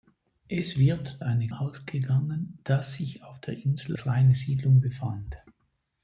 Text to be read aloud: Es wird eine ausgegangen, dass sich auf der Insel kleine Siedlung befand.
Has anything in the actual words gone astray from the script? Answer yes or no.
no